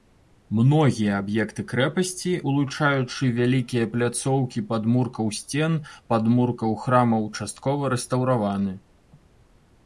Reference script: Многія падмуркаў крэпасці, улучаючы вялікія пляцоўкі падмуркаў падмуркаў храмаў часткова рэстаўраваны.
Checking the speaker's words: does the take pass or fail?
fail